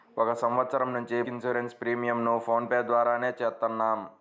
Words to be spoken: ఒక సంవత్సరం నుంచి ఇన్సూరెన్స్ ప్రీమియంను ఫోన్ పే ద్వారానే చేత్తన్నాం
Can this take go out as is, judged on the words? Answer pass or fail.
pass